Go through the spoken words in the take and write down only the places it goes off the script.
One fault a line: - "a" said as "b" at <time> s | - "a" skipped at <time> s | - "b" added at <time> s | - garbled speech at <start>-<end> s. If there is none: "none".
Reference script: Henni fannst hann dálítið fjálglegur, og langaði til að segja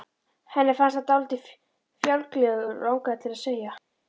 none